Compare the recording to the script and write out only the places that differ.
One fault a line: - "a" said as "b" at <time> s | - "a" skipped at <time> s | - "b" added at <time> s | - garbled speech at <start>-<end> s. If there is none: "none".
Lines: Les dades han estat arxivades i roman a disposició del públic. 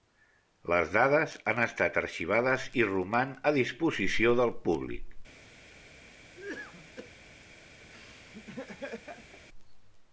none